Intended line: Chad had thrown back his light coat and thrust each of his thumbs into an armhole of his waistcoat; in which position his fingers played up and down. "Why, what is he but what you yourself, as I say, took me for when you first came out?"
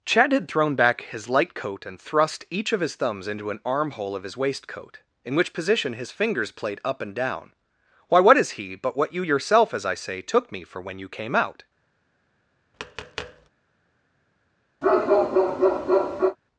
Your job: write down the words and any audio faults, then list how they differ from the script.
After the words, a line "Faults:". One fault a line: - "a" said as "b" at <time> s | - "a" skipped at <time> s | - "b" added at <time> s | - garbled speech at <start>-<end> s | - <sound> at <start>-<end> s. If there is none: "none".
Chad had thrown back his light coat and thrust each of his thumbs into an armhole of his waistcoat; in which position his fingers played up and down. "Why, what is he but what you yourself, as I say, took me for when you came out?"
Faults:
- "first" skipped at 11.1 s
- tap at 12.7-13.5 s
- bark at 14.8-16.4 s